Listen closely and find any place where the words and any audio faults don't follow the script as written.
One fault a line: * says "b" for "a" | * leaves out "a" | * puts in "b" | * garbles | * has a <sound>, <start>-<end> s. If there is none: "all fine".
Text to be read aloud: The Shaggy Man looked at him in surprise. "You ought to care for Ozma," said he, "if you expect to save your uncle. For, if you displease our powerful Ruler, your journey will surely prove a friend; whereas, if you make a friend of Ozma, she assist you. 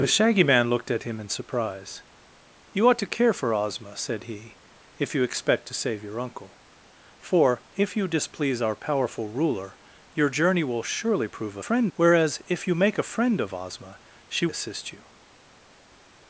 all fine